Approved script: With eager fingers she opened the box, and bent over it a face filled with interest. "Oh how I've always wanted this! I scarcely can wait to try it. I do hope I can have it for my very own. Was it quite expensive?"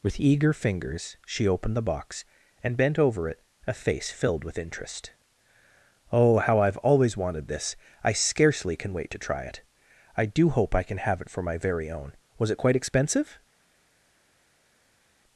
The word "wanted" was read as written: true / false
true